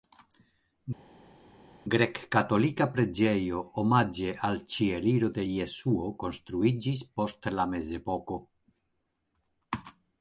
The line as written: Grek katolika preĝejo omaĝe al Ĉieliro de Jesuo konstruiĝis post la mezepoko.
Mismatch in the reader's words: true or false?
false